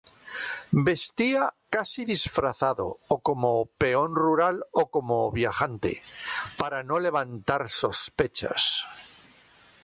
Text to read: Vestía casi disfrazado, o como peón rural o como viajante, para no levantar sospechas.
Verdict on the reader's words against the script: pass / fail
pass